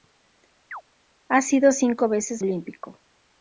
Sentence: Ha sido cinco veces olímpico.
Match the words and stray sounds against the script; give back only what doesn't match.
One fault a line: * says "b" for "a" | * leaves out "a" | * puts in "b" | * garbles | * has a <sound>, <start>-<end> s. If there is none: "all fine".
* has a chirp, 0.7-0.8 s